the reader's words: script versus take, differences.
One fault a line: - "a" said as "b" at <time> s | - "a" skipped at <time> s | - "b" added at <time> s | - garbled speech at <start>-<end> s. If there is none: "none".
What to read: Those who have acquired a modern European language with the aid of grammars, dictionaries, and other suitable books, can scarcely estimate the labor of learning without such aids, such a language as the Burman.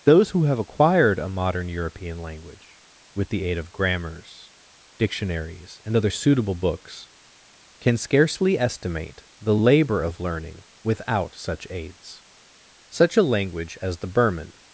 none